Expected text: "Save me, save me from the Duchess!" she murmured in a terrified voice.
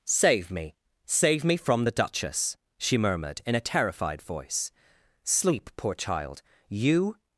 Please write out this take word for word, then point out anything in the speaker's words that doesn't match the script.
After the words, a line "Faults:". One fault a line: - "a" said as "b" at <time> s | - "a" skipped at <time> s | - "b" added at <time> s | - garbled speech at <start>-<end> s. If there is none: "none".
"Save me, save me from the Duchess!" she murmured in a terrified voice. "Sleep, poor child, you
Faults:
- "Sleep poor child you" added at 5.2 s